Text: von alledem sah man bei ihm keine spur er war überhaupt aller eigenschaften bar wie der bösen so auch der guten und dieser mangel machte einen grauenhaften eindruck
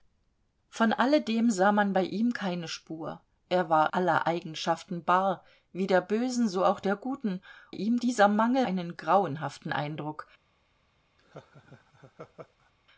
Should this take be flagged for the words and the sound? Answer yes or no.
yes